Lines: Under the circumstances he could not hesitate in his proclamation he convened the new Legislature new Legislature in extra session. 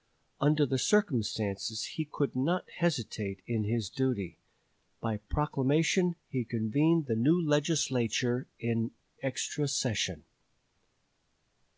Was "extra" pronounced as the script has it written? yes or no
yes